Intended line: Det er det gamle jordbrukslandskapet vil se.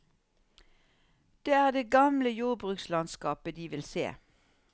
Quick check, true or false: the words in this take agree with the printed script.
false